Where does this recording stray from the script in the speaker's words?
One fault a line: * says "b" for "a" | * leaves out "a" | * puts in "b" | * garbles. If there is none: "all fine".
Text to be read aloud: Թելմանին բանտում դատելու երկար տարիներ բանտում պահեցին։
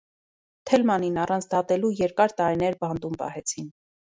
* says "առանց" for "բանտում"